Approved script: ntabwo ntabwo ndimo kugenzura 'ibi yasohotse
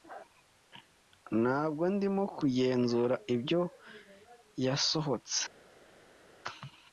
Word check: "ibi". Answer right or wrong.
wrong